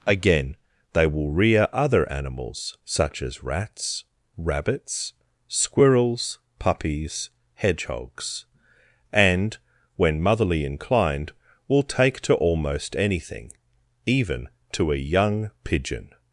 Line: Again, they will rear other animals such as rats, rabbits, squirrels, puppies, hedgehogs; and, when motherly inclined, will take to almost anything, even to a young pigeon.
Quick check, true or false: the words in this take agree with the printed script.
true